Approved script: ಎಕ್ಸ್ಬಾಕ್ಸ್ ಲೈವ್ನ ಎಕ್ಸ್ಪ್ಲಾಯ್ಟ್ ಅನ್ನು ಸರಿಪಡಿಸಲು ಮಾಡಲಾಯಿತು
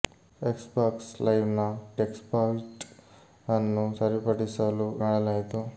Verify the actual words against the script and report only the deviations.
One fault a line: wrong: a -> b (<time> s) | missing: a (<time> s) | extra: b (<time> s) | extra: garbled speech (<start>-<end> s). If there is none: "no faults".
no faults